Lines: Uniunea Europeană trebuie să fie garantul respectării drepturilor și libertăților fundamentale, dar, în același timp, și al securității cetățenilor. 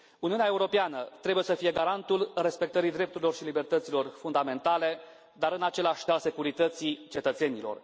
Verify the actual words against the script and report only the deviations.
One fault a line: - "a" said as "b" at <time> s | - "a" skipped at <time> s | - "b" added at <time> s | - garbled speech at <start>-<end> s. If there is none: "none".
- "timp și" skipped at 6.1 s